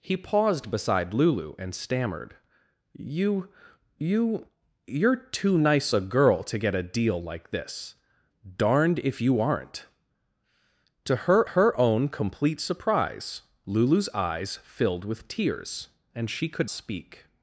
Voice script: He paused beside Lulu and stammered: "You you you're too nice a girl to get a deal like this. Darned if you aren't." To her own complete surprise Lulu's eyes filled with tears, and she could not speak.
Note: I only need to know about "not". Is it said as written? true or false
false